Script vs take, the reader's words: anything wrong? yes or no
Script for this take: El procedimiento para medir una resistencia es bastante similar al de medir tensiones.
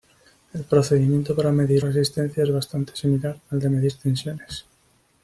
yes